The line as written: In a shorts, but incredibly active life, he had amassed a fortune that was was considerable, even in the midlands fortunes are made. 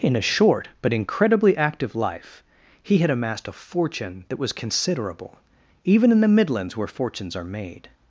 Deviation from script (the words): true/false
true